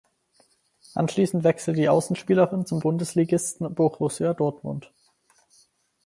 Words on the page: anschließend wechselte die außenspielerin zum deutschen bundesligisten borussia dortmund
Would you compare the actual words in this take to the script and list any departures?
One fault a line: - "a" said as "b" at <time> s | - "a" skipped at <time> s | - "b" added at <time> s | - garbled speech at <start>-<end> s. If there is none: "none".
- "deutschen" skipped at 2.8 s